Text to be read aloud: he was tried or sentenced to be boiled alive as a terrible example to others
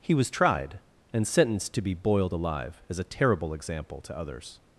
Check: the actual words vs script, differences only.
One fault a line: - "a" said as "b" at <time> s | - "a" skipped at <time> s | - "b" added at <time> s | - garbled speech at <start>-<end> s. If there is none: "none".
- "or" said as "and" at 1.1 s